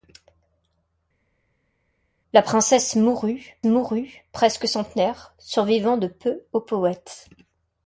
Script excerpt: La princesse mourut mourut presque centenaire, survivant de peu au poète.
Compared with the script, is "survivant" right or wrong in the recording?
right